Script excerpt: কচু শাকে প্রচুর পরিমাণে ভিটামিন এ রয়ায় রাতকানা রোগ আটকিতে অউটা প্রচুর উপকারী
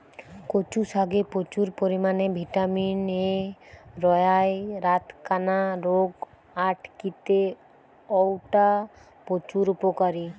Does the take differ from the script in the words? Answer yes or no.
no